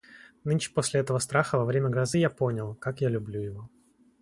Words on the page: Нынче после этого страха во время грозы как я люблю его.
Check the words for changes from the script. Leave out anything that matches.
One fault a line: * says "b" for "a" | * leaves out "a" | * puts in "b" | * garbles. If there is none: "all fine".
* puts in "я понял"